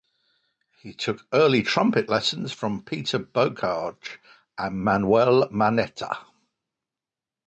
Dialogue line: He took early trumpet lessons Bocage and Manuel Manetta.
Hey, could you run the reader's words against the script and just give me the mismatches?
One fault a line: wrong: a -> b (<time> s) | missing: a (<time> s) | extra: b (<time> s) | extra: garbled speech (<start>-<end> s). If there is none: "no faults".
extra: from Peter (2.5 s)